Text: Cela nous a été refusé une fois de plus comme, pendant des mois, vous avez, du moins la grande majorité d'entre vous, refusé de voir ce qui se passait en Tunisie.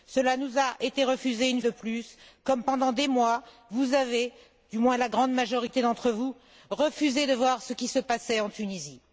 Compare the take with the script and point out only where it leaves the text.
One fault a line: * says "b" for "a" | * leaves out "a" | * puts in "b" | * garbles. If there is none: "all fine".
* leaves out "fois"